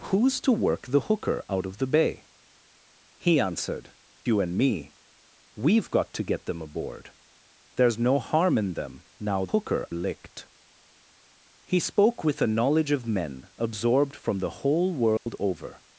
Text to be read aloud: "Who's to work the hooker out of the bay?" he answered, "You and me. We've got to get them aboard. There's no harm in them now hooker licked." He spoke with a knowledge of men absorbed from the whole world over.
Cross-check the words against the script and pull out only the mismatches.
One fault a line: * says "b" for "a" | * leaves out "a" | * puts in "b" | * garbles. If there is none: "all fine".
all fine